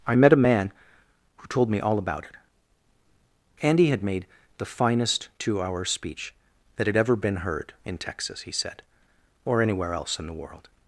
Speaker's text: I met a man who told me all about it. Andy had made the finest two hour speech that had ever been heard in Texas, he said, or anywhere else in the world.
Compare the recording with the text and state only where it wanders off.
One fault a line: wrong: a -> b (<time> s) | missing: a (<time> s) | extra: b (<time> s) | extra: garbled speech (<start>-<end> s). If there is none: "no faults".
no faults